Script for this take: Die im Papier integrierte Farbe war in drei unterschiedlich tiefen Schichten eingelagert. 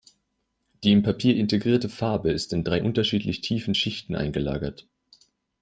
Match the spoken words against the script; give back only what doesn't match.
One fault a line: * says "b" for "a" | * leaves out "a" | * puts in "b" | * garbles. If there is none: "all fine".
* says "ist" for "war"